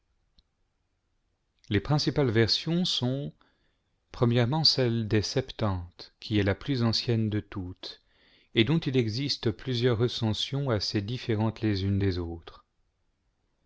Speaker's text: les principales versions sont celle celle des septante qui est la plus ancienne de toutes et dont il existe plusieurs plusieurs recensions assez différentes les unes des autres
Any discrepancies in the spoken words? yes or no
yes